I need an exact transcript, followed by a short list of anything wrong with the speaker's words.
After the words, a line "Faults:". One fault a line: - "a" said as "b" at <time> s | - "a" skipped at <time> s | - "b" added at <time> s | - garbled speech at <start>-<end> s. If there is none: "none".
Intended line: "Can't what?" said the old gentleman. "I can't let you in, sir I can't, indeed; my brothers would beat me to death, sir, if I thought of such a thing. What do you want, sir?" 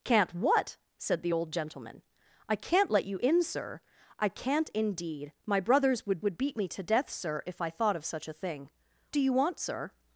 "Can't what?" said the old gentleman. "I can't let you in, sir I can't, indeed; my brothers would would beat me to death, sir, if I thought of such a thing. Do you want, sir?"
Faults:
- "would" added at 6.2 s
- "What" skipped at 8.7 s